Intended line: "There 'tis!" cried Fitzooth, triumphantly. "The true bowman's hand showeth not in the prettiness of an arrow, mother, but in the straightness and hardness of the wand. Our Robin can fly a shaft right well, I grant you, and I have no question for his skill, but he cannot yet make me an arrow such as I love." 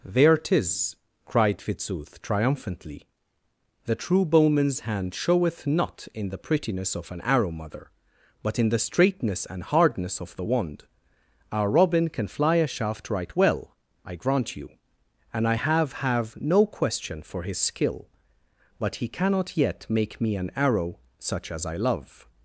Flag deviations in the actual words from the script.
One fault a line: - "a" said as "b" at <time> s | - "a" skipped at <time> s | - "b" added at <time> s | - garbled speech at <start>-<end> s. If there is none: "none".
- "have" added at 15.9 s